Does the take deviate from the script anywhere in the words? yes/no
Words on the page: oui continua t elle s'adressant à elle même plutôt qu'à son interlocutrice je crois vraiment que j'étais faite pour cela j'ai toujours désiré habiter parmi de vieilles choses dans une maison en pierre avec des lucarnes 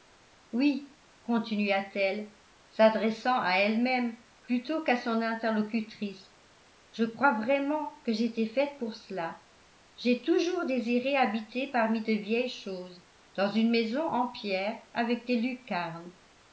no